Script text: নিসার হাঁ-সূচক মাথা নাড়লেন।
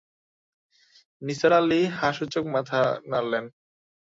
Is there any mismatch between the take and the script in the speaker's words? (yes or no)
yes